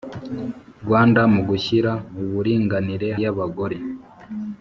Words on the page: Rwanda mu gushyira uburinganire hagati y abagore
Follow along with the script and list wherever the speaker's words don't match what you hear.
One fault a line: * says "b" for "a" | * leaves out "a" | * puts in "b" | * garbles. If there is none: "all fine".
* leaves out "hagati"